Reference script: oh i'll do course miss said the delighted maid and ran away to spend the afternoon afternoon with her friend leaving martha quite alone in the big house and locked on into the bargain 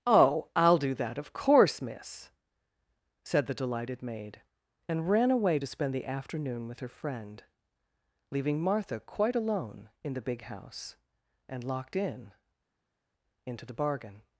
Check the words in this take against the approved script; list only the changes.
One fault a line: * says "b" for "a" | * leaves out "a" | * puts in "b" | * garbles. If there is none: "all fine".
* puts in "that of"
* leaves out "afternoon"
* says "in" for "on"